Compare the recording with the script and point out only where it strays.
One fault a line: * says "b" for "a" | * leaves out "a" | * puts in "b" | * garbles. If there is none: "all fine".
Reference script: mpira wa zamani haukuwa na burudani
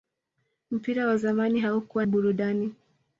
* leaves out "na"